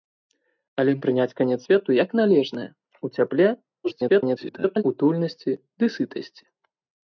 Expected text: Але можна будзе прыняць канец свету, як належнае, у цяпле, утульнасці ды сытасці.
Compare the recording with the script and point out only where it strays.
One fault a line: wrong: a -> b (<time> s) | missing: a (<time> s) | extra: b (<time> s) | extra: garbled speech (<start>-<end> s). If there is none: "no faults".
missing: можна будзе (0.9 s)
extra: garbled speech (3.8-4.8 s)